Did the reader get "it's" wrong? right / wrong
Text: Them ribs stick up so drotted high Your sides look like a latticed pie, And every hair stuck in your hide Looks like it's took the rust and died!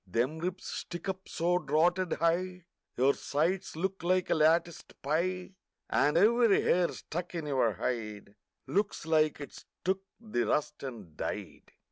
right